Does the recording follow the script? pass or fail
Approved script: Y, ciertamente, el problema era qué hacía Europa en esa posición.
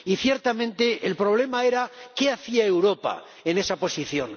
pass